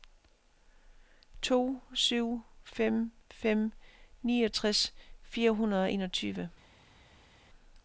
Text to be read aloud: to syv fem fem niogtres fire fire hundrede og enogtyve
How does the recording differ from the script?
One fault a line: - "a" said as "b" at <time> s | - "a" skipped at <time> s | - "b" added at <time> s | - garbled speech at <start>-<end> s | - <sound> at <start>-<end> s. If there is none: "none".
- "fire" skipped at 5.5 s